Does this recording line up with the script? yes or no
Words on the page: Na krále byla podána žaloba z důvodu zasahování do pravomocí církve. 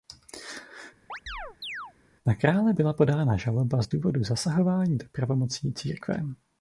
yes